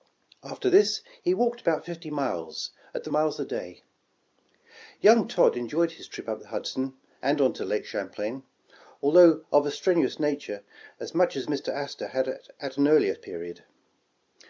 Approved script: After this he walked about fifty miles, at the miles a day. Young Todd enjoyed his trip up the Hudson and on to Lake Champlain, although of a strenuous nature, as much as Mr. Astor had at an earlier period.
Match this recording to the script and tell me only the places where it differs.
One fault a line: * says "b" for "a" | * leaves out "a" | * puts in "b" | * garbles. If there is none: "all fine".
all fine